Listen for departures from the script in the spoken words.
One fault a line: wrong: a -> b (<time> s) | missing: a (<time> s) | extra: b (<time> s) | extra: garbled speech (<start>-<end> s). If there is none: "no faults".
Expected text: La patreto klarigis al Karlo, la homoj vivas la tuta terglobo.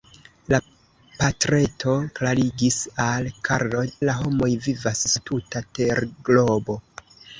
no faults